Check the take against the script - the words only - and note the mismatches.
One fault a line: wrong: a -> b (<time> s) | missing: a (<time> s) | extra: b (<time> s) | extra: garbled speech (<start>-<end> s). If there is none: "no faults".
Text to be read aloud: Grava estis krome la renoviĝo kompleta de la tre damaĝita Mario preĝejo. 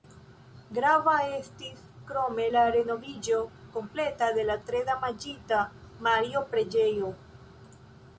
no faults